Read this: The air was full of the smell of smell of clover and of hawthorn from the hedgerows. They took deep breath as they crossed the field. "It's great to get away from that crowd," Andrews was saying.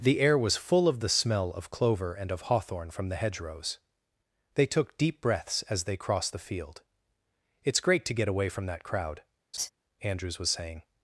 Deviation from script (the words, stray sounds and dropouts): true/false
true